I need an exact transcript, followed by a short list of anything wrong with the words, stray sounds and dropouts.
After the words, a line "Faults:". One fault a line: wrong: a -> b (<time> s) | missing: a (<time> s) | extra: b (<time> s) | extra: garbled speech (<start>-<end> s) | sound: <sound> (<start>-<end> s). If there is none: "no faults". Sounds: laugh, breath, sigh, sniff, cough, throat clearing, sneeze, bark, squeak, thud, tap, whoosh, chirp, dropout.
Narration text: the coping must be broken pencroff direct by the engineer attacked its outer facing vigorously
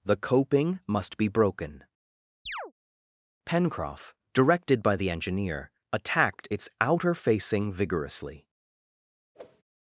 the coping must be broken pencroff directed by the engineer attacked its outer facing vigorously
Faults:
sound: chirp (2.5-2.7 s)
wrong: direct -> directed (4.3 s)
sound: whoosh (9.3-9.6 s)